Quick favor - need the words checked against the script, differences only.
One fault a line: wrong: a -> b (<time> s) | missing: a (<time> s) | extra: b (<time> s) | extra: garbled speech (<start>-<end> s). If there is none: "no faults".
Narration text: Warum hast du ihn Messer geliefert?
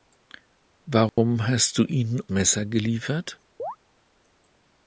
no faults